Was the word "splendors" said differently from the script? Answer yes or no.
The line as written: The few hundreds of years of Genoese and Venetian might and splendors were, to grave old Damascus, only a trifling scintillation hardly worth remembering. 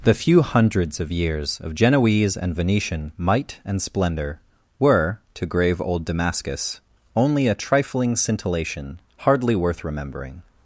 yes